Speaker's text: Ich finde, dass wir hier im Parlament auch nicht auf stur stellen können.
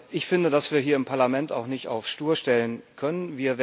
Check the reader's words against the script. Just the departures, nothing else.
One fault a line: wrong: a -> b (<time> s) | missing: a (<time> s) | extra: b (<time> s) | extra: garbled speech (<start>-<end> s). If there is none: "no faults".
no faults